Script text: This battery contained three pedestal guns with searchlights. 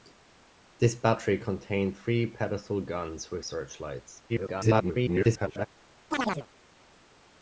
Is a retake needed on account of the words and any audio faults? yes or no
yes